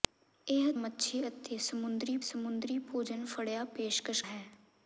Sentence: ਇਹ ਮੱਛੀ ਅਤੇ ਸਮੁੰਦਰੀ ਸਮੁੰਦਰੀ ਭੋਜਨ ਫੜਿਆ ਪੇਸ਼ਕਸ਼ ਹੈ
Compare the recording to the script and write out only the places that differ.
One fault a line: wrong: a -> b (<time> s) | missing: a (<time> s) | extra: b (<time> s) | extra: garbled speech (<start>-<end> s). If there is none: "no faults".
no faults